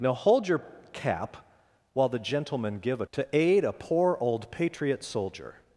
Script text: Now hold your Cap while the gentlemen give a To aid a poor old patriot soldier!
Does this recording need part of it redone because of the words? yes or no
no